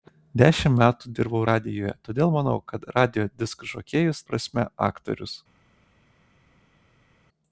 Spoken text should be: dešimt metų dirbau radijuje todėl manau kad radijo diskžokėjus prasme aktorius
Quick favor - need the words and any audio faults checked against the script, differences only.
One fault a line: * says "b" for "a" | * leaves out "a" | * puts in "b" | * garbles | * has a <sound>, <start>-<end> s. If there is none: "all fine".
all fine